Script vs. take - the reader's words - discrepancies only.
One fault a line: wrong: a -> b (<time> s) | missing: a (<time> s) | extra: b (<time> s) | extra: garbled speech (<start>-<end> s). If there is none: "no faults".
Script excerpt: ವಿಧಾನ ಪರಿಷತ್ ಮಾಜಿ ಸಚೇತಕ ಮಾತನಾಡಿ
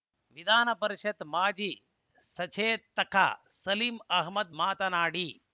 extra: ಸಲೀಂ ಅಹ್ಮದ್ (3.6 s)